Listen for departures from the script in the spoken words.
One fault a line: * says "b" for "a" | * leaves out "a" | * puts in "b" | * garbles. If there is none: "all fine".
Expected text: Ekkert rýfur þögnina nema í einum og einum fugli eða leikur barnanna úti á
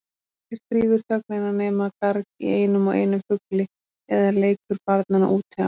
* puts in "garg"